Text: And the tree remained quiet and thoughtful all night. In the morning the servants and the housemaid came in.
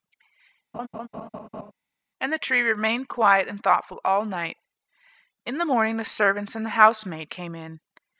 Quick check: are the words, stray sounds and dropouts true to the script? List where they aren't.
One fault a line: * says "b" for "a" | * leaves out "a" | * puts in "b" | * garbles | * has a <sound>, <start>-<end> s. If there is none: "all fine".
* has a laugh, 0.7-1.7 s